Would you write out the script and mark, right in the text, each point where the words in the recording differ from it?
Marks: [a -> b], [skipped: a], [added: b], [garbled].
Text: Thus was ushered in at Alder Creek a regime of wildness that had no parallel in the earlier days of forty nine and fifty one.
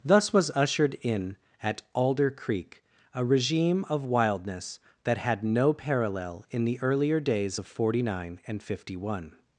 Thus was ushered in at Alder Creek a regime of wildness that had no parallel in the earlier days of forty nine and fifty one.